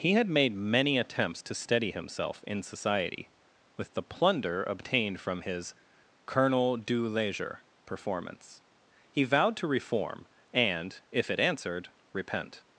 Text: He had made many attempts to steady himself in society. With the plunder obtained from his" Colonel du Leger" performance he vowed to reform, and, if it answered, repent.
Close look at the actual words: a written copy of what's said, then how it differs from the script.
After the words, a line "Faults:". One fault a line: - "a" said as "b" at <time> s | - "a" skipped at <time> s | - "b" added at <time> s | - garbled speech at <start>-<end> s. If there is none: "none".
He had made many attempts to steady himself in society. With the plunder obtained from his" Colonel du Leger" performance he vowed to reform, and, if it answered, repent.
Faults:
none